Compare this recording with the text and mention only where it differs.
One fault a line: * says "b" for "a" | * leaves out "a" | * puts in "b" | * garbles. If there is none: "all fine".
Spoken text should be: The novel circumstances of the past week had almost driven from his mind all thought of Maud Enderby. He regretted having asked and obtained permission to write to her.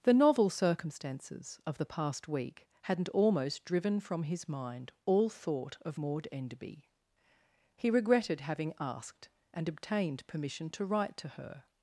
* says "hadn't" for "had"